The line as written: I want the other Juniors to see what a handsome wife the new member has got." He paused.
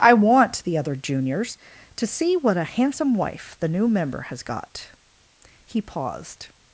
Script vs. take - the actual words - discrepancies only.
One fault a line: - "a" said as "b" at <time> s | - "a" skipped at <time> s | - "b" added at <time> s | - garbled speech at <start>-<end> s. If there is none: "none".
none